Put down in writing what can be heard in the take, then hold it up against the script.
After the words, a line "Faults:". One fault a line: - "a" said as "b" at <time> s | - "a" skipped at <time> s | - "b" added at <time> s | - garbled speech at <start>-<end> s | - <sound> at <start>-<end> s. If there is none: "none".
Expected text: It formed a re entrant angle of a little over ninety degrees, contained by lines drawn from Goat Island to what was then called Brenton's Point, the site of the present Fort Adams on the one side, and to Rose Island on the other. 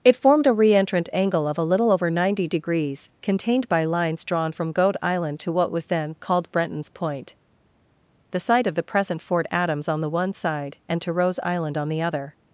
It formed a re entrant angle of a little over ninety degrees, contained by lines drawn from Goat Island to what was then called Brenton's Point, the site of the present Fort Adams on the one side, and to Rose Island on the other.
Faults:
none